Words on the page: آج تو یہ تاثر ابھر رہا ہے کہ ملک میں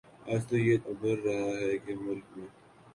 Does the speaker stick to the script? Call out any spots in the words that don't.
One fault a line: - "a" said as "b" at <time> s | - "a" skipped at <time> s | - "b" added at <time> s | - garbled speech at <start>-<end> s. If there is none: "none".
- "تاثر" skipped at 0.8 s